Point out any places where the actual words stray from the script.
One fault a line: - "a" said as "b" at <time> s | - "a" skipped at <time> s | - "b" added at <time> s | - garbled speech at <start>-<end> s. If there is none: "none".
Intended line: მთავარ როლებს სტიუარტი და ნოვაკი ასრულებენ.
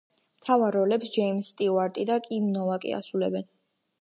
- "ჯეიმზ" added at 1.2 s
- "კიმ" added at 2.3 s